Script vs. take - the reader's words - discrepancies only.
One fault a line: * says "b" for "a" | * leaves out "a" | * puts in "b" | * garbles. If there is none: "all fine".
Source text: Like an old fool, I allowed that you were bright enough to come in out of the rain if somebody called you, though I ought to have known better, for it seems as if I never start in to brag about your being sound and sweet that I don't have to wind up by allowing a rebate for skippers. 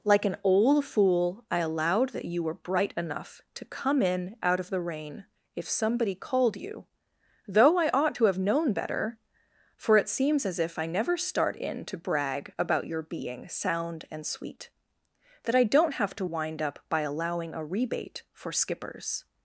all fine